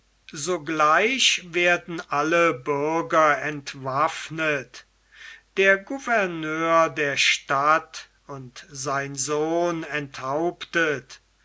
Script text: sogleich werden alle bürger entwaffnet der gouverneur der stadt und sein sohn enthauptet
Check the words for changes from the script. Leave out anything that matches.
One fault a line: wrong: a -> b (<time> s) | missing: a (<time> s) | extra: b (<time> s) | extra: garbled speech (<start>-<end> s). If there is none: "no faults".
no faults